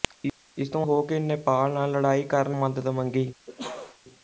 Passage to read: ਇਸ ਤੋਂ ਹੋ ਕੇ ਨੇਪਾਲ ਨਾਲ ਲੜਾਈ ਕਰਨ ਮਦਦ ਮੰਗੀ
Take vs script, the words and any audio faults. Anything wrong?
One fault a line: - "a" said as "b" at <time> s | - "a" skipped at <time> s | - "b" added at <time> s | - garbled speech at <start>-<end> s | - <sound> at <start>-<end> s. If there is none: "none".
- sneeze at 3.5-4.0 s